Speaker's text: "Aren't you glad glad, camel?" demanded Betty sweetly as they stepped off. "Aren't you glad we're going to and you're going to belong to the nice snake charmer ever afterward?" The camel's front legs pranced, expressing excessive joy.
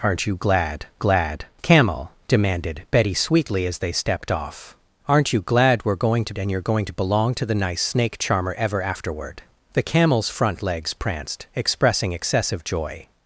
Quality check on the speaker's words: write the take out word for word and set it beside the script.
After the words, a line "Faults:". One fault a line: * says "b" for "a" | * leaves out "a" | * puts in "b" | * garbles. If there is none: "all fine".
"Aren't you glad glad, camel?" demanded Betty sweetly as they stepped off. "Aren't you glad we're going to and you're going to belong to the nice snake charmer ever afterward?" The camel's front legs pranced, expressing excessive joy.
Faults:
all fine